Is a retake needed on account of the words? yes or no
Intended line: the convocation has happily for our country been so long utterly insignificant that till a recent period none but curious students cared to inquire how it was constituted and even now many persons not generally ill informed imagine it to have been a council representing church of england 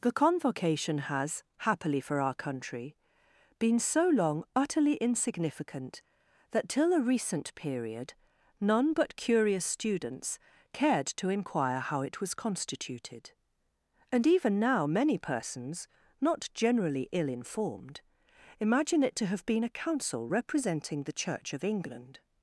yes